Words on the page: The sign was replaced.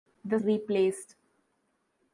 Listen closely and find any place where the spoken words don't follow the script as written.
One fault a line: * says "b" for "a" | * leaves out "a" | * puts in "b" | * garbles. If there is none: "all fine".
* leaves out "sign was"